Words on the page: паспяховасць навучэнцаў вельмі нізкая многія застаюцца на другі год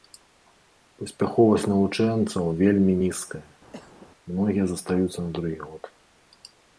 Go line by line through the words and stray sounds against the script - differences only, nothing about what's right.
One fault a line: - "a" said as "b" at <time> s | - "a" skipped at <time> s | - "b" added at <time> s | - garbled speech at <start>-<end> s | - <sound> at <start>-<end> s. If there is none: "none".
- cough at 3.7-4.1 s